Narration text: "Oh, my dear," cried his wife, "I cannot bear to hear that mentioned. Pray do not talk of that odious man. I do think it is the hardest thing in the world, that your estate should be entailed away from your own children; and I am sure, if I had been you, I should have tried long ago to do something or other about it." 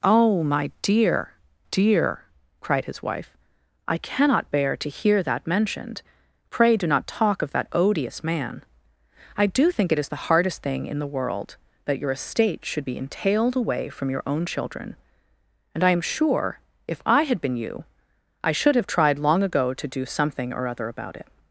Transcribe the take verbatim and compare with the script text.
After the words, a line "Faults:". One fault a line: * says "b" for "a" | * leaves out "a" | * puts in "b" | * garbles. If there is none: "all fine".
"Oh, my dear dear," cried his wife, "I cannot bear to hear that mentioned. Pray do not talk of that odious man. I do think it is the hardest thing in the world, that your estate should be entailed away from your own children; and I am sure, if I had been you, I should have tried long ago to do something or other about it."
Faults:
* puts in "dear"